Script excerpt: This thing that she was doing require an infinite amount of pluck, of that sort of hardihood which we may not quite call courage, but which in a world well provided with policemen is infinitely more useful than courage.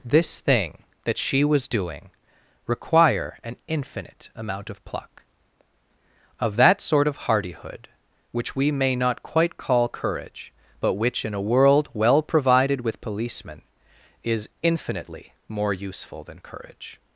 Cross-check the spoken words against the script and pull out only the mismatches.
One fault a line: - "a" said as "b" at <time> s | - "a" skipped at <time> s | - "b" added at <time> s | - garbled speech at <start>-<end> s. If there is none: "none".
none